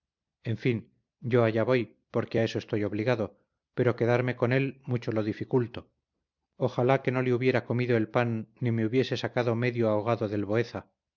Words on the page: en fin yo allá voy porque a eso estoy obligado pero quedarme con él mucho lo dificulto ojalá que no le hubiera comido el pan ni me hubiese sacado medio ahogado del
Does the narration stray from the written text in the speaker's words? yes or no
no